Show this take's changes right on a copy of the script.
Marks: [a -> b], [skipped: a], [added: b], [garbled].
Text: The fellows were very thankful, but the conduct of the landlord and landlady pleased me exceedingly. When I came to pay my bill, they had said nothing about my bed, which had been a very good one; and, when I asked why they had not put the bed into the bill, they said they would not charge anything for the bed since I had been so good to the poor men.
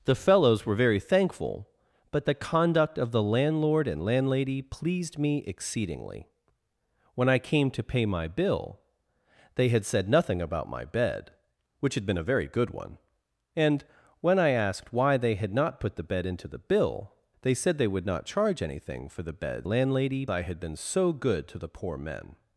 The fellows were very thankful, but the conduct of the landlord and landlady pleased me exceedingly. When I came to pay my bill, they had said nothing about my bed, which had been a very good one; and, when I asked why they had not put the bed into the bill, they said they would not charge anything for the bed [since -> landlady] I had been so good to the poor men.